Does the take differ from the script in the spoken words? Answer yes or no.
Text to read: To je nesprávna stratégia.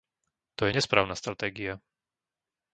no